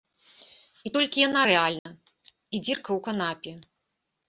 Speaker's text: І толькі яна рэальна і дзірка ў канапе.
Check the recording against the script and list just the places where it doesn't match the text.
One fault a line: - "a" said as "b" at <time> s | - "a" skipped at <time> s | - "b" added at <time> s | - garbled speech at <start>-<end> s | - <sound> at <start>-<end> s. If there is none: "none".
- dropout at 1.8-1.9 s